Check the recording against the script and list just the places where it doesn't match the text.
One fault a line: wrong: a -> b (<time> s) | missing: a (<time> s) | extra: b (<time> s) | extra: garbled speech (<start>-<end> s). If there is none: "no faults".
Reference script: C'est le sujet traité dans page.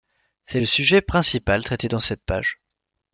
extra: principal (1.0 s)
extra: cette (2.0 s)